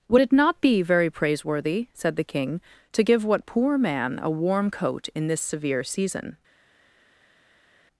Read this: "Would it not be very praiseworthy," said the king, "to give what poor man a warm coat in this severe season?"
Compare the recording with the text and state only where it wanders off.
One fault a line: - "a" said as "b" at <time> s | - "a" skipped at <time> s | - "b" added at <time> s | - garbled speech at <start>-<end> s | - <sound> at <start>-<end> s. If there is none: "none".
none